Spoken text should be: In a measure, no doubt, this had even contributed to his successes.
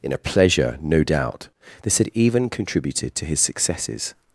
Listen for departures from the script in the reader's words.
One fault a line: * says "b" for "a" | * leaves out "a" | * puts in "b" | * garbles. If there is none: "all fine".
* says "pleasure" for "measure"